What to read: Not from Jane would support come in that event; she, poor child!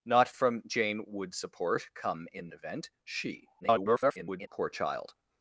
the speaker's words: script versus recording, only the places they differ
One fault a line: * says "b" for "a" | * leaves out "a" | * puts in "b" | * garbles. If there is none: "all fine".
* leaves out "that"
* garbles